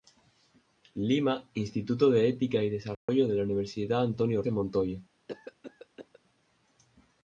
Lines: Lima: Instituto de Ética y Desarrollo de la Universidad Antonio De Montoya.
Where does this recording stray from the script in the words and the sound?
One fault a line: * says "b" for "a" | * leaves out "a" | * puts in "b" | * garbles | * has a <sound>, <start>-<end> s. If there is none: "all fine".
* has a dropout, 2.9-3.1 s
* has a cough, 5.3-6.2 s